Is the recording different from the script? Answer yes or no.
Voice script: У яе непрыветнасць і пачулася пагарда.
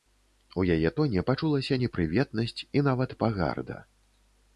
yes